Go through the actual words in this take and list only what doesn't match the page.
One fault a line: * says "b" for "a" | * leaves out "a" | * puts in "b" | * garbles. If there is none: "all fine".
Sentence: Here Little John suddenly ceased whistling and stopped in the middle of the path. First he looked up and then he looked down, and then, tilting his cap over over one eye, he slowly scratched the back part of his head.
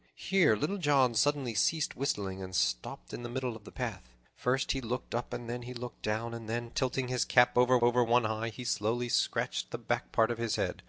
all fine